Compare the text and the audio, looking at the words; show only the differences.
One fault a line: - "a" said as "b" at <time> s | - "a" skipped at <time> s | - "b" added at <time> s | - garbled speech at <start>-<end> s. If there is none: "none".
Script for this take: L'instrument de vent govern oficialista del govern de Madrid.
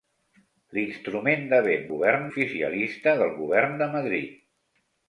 none